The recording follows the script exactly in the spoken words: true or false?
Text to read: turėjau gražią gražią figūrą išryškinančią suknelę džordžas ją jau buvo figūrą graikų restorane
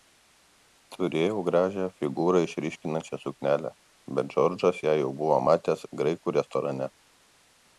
false